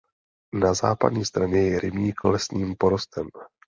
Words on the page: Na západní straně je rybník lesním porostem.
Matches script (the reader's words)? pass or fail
pass